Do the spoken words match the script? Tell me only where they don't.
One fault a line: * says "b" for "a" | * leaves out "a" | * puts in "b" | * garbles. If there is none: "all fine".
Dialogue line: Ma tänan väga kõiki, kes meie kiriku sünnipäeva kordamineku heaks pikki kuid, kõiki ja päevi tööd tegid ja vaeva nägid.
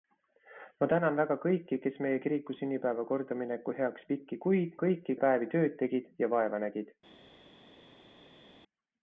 all fine